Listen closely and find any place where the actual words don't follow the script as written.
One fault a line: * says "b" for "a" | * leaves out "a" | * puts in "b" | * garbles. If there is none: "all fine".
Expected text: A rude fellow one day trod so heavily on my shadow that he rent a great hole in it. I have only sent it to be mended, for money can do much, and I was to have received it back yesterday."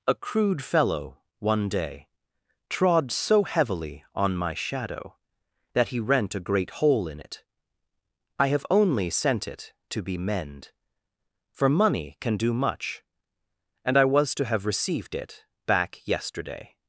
* says "crude" for "rude"
* says "mend" for "mended"